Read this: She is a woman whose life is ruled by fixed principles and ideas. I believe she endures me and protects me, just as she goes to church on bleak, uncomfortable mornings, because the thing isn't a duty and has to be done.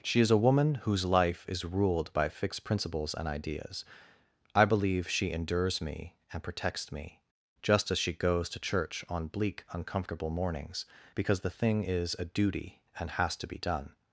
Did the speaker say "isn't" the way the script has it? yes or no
no